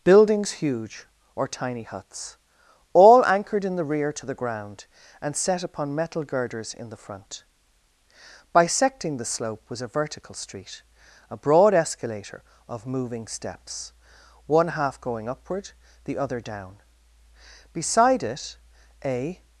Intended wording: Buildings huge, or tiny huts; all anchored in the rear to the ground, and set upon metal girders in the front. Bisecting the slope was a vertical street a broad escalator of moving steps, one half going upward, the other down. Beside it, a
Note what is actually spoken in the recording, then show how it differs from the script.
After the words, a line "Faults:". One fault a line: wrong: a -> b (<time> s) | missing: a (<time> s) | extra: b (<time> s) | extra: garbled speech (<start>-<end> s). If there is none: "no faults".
Buildings huge, or tiny huts; all anchored in the rear to the ground, and set upon metal girders in the front. Bisecting the slope was a vertical street a broad escalator of moving steps, one half going upward, the other down. Beside it, a
Faults:
no faults